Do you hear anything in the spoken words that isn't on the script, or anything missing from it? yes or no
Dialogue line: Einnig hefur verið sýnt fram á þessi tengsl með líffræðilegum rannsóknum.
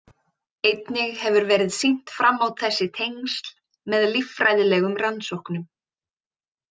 no